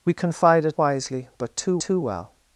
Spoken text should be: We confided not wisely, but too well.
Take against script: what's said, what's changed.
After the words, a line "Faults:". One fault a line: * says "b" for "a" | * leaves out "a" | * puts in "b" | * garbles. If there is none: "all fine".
We confided wisely, but too too well.
Faults:
* leaves out "not"
* puts in "too"